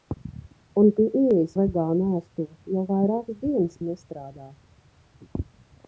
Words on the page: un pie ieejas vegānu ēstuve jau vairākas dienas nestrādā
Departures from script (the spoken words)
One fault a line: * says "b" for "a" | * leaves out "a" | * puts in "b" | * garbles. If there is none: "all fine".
all fine